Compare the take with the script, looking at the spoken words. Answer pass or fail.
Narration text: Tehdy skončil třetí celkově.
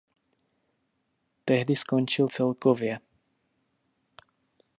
fail